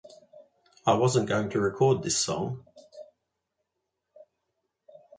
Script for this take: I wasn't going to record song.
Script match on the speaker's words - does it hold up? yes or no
no